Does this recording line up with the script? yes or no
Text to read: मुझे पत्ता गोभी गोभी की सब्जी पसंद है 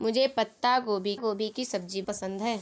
yes